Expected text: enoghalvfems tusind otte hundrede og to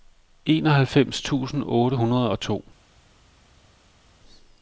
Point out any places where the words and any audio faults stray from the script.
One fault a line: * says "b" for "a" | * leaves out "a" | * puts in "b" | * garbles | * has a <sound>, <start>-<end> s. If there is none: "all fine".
all fine